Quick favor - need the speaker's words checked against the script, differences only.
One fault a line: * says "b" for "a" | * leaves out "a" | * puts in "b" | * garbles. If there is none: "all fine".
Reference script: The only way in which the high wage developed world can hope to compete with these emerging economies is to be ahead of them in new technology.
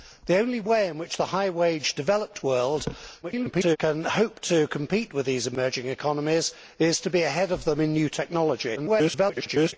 * garbles
* garbles